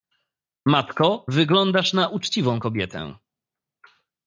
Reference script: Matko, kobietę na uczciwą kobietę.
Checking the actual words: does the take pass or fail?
fail